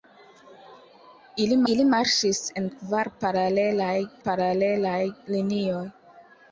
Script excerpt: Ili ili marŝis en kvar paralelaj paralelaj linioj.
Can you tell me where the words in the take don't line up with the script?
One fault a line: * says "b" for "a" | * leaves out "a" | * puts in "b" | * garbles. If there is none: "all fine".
all fine